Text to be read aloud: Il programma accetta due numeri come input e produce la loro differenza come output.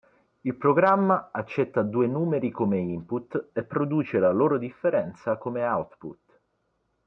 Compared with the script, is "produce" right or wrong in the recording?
right